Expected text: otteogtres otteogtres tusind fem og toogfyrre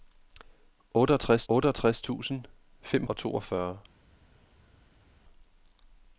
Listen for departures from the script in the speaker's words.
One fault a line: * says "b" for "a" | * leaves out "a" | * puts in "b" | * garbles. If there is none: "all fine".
all fine